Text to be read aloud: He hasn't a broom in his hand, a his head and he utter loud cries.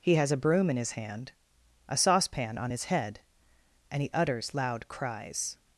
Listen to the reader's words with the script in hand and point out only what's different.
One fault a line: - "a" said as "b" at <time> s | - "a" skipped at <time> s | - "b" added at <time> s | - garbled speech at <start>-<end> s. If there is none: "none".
- "hasn't" said as "has" at 0.1 s
- "saucepan on" added at 1.9 s
- "utter" said as "utters" at 4.1 s